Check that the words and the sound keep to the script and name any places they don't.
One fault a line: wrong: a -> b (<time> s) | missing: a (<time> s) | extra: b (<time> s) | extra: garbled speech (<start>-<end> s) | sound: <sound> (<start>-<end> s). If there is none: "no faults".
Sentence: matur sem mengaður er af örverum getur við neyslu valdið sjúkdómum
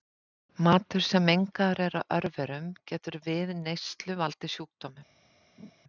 sound: laugh (5.6-5.7 s)